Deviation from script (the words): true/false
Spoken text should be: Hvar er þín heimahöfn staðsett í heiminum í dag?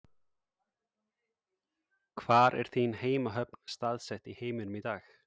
false